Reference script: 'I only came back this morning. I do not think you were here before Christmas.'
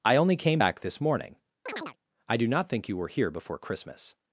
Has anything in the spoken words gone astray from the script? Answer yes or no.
no